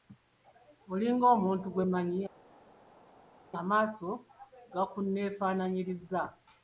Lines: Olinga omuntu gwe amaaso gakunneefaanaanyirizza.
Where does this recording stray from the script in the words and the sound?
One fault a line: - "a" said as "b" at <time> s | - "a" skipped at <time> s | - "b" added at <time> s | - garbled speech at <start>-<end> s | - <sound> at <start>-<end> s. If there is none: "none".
- "mmanyi" added at 1.9 s